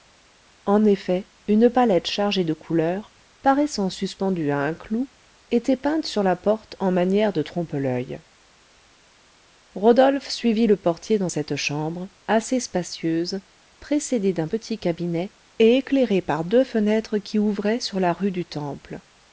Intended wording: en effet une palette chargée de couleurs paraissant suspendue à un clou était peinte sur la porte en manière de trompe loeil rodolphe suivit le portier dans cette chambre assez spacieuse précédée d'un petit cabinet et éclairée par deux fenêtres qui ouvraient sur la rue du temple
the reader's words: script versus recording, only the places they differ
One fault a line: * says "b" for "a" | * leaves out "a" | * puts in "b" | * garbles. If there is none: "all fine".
all fine